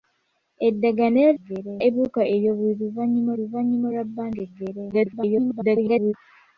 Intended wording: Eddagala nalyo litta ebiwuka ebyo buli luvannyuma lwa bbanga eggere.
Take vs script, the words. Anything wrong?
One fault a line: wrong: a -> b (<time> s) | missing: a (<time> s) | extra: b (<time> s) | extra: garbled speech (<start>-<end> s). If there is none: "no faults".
wrong: litta -> eggere (1.4 s)
extra: luvannyuma (3.4 s)
extra: garbled speech (4.9-6.1 s)